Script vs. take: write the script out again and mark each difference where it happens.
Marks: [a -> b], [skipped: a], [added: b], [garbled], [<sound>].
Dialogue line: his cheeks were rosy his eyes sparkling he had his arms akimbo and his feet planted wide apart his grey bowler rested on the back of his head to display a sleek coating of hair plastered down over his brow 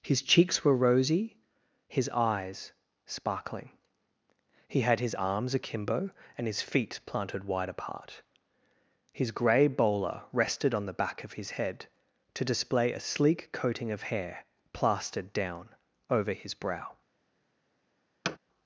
his cheeks were rosy his eyes sparkling he had his arms akimbo and his feet planted wide apart his grey bowler rested on the back of his head to display a sleek coating of hair plastered down over his brow [thud]